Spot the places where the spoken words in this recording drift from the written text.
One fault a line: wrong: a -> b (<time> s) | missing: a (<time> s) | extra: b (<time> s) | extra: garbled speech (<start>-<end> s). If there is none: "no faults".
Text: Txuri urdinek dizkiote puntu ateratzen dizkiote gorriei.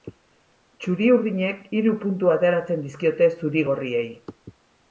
wrong: dizkiote -> hiru (1.8 s)
extra: zuri (3.4 s)